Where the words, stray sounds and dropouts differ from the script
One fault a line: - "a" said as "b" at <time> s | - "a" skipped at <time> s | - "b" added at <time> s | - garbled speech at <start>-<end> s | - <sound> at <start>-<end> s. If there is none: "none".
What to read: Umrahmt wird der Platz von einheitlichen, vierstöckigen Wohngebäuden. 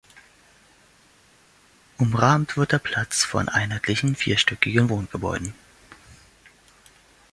none